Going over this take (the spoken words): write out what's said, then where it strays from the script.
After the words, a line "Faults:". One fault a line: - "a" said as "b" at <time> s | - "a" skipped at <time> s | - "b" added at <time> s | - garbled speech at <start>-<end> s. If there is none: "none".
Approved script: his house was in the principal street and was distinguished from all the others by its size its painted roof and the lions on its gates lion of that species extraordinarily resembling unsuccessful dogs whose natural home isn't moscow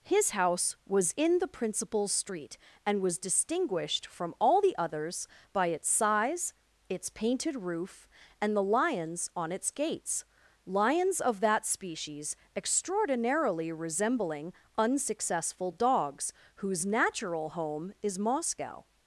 his house was in the principal street and was distinguished from all the others by its size its painted roof and the lions on its gates lions of that species extraordinarily resembling unsuccessful dogs whose natural home is moscow
Faults:
- "lion" said as "lions" at 10.6 s
- "isn't" said as "is" at 18.0 s